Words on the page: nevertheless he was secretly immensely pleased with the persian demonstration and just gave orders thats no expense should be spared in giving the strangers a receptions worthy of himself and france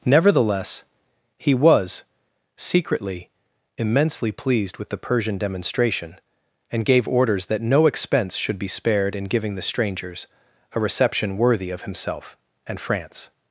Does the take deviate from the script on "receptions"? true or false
true